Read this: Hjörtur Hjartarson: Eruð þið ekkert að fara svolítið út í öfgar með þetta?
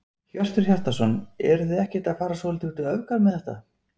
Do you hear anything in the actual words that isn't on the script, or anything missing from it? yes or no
no